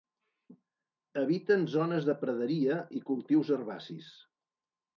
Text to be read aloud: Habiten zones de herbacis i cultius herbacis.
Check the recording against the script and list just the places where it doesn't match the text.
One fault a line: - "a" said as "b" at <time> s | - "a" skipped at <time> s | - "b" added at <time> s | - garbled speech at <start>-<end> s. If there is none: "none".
- "herbacis" said as "praderia" at 2.2 s